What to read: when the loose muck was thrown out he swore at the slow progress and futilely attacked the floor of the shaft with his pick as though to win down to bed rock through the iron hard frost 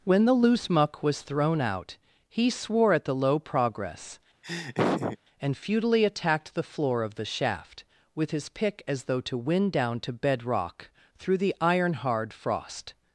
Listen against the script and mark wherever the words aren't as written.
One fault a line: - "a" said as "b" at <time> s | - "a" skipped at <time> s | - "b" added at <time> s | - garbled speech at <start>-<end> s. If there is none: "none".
- "slow" said as "low" at 3.1 s